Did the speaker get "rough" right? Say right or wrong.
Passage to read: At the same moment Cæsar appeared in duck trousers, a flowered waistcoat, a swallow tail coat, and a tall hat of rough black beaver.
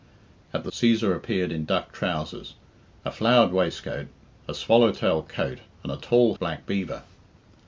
wrong